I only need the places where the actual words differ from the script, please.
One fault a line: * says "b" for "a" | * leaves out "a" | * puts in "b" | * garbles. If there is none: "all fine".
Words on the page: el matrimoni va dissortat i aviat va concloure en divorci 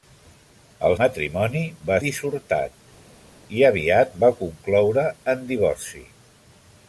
all fine